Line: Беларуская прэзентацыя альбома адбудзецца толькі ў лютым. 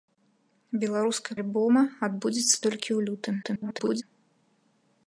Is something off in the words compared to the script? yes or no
yes